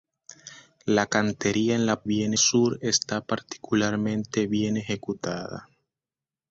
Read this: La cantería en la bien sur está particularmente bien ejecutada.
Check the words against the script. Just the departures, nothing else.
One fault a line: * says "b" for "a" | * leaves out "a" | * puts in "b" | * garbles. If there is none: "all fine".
all fine